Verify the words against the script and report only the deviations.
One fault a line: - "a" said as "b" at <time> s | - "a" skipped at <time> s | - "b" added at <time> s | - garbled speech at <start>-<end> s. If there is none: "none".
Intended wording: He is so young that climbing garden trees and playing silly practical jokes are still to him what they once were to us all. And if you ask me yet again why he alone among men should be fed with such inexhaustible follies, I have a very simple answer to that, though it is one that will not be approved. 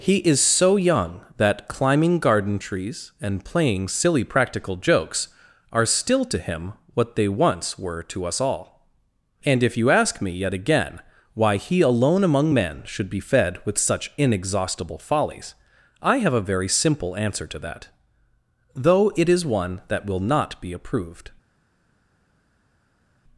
none